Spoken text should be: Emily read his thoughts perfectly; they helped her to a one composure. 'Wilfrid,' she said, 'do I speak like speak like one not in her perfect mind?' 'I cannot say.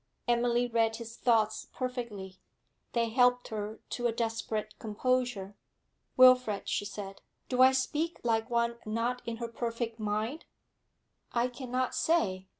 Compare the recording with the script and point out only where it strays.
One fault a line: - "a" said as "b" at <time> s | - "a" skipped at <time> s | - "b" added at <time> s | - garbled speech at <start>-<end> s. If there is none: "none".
- "one" said as "desperate" at 4.1 s
- "speak like" skipped at 8.5 s